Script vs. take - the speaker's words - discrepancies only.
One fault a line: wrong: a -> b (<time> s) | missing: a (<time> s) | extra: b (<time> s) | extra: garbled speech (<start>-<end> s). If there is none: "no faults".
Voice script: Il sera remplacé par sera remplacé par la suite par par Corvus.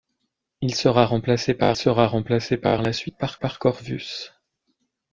no faults